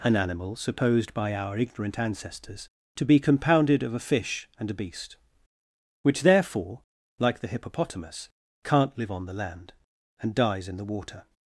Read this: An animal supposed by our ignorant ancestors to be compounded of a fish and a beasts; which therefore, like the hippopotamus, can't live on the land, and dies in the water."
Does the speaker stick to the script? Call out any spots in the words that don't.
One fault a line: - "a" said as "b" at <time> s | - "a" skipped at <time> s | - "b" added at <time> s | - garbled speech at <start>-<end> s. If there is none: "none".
- "beasts" said as "beast" at 4.8 s